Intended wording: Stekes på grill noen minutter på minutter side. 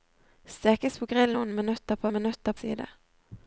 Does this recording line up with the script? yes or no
yes